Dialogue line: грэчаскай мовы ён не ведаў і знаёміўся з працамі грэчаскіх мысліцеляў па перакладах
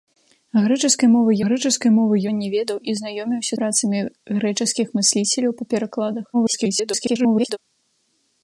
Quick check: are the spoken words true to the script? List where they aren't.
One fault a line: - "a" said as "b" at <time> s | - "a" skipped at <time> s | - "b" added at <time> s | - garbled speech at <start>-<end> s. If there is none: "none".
- "грэчаскай мовы" added at 1.5 s
- "з" skipped at 3.5 s
- garbled speech at 6.3-7.6 s